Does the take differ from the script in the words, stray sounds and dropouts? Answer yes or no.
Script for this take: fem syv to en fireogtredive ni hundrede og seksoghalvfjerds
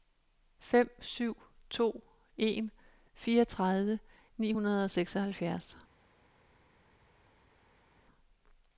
no